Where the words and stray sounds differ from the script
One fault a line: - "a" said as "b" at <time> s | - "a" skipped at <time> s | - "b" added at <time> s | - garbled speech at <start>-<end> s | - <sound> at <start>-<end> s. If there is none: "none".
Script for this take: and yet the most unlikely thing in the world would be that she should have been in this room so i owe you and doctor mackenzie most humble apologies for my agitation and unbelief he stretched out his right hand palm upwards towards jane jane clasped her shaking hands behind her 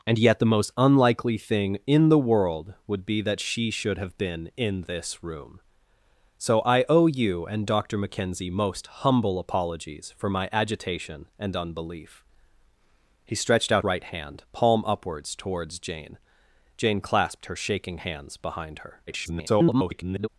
- "his" skipped at 13.8 s
- garbled speech at 19.1-20.3 s